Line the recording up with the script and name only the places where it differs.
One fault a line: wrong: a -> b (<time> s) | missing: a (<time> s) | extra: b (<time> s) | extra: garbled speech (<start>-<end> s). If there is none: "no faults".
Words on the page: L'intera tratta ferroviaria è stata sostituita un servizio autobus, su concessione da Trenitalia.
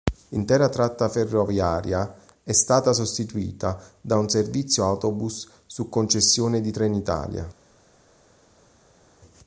extra: da (4.0 s)
wrong: da -> di (6.6 s)